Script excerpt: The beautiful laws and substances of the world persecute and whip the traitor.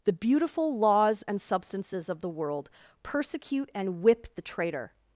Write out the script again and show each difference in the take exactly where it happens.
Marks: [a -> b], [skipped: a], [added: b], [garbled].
The beautiful laws and substances of the world persecute and whip the traitor.